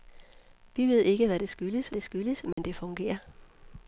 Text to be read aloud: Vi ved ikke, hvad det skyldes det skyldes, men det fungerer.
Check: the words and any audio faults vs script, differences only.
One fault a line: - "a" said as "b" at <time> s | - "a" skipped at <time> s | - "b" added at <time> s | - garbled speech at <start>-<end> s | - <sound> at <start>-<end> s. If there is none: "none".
- dropout at 2.5-2.6 s